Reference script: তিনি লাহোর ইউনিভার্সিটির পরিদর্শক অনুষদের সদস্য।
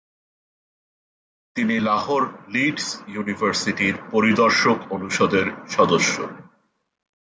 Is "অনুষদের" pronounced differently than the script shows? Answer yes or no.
no